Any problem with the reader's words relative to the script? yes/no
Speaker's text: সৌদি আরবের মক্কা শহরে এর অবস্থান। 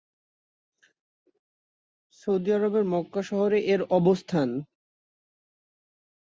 no